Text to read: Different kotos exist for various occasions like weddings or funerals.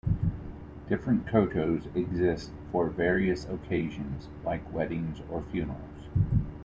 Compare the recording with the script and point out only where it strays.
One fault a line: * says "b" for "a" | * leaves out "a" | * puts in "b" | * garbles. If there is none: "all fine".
all fine